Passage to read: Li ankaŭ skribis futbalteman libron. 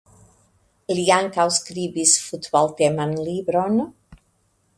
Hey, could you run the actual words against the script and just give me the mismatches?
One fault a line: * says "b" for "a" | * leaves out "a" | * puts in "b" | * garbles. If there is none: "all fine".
all fine